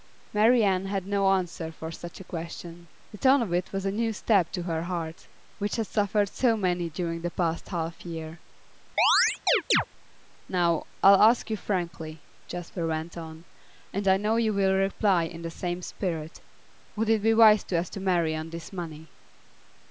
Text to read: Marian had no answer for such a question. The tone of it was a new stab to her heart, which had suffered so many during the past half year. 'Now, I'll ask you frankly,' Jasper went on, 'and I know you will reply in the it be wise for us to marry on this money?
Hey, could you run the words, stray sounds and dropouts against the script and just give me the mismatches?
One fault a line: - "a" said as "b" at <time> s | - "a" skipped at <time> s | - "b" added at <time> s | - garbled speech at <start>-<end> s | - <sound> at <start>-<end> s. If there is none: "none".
- chirp at 9.0-9.9 s
- "same spirit would" added at 15.5 s